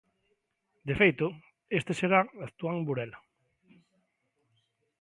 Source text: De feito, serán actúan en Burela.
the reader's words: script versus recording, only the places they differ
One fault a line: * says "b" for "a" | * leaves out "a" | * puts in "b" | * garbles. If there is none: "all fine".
* puts in "este"